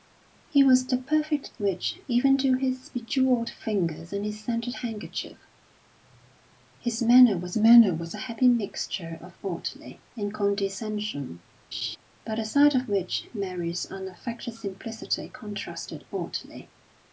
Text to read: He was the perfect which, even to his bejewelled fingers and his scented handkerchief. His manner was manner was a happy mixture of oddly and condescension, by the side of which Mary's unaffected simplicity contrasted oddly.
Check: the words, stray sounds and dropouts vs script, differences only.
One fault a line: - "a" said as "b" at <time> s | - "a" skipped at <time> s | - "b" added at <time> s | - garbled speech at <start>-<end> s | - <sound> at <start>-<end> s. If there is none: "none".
- laugh at 11.7-12.0 s